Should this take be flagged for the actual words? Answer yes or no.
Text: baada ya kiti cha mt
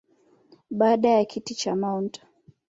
no